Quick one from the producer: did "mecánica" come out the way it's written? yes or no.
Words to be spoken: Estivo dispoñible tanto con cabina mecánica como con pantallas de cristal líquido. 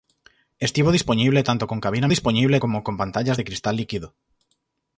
no